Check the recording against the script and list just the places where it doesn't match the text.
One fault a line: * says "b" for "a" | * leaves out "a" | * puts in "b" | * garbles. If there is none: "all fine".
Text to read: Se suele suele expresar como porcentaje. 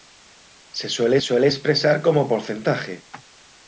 all fine